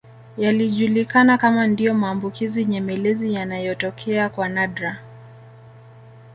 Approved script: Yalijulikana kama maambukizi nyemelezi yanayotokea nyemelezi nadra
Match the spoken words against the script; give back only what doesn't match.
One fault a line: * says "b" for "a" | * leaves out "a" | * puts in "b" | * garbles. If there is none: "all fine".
* puts in "ndio"
* says "kwa" for "nyemelezi"